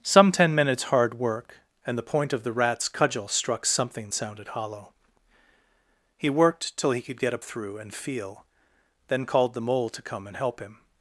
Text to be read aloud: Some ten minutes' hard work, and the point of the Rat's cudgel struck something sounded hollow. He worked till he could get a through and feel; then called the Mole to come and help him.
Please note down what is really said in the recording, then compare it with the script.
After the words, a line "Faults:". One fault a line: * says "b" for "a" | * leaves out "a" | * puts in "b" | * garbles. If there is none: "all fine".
Some ten minutes' hard work, and the point of the Rat's cudgel struck something sounded hollow. He worked till he could get a through and feel; then called the Mole to come and help him.
Faults:
all fine